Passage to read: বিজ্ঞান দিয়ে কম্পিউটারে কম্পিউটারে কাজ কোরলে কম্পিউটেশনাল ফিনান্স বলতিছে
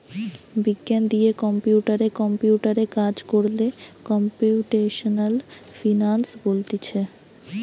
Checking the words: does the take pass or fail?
pass